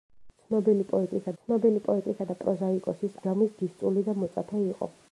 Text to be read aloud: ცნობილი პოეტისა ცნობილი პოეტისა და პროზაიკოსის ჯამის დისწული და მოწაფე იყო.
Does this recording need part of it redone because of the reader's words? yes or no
no